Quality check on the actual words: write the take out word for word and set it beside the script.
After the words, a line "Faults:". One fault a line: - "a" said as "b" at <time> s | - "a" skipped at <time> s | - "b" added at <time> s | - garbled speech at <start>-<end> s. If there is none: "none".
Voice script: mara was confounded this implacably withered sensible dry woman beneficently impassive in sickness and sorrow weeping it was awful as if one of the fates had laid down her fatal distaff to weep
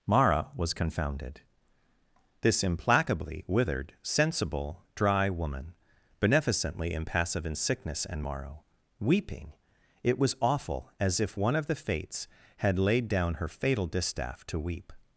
mara was confounded this implacably withered sensible dry woman beneficently impassive in sickness and morrow weeping it was awful as if one of the fates had laid down her fatal distaff to weep
Faults:
- "sorrow" said as "morrow" at 8.2 s